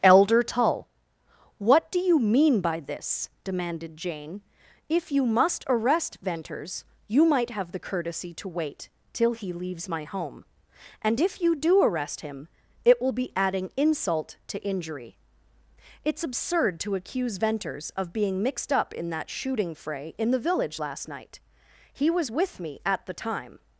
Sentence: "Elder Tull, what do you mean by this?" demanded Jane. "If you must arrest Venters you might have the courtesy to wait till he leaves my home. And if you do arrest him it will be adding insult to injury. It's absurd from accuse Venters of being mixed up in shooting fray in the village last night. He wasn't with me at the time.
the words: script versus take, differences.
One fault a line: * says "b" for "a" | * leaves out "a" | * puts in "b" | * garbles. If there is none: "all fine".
* says "to" for "from"
* puts in "that"
* says "was" for "wasn't"